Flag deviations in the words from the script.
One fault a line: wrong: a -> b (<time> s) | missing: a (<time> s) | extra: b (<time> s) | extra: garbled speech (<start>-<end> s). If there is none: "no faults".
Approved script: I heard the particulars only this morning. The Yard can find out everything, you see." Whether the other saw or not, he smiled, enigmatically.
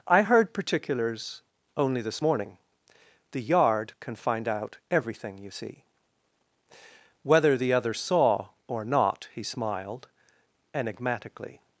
missing: the (0.5 s)